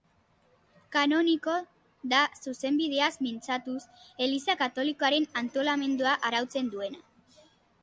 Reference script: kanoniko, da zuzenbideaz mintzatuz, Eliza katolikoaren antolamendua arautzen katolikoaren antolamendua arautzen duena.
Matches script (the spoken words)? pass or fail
fail